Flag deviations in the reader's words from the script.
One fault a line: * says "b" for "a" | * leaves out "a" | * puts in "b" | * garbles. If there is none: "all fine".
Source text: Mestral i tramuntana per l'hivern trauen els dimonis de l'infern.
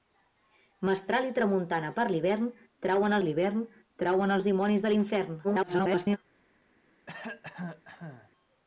* puts in "l'hivern trauen"
* garbles